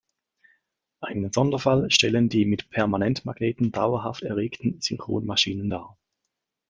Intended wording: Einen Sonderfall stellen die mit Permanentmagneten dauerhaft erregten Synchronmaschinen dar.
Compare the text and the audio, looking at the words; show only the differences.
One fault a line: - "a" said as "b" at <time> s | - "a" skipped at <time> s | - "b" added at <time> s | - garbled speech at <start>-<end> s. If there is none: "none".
none